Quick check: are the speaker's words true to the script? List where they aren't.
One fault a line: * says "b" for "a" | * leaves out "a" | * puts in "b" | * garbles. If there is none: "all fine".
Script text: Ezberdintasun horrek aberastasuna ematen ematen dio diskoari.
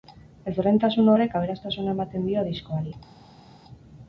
* leaves out "ematen"